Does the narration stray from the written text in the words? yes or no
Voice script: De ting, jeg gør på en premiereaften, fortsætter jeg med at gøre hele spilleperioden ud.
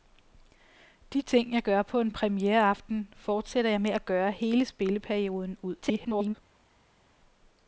yes